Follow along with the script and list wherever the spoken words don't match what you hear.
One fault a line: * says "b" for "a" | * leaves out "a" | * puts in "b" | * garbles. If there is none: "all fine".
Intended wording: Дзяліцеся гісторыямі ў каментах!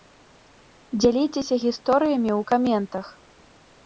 all fine